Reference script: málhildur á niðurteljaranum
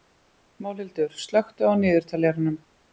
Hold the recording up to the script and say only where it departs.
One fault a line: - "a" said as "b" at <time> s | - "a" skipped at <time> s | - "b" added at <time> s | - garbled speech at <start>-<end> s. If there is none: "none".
- "slökktu" added at 1.3 s